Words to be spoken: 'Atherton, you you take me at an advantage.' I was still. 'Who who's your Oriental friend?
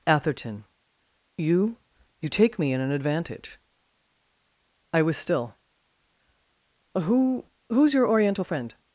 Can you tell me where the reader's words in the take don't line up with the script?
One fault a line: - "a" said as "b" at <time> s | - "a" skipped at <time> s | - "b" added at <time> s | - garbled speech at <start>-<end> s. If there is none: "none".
- "at" said as "in" at 2.7 s